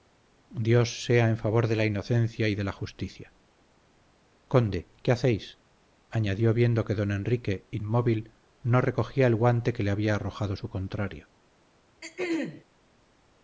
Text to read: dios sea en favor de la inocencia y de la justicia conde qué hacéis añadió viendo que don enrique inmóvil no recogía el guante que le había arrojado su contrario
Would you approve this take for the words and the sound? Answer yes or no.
no